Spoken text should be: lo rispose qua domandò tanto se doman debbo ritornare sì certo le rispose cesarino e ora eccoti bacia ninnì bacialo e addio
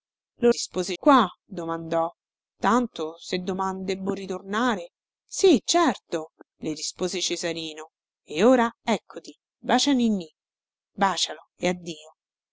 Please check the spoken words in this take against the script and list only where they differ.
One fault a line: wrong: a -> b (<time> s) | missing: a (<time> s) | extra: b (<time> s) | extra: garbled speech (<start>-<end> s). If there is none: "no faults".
no faults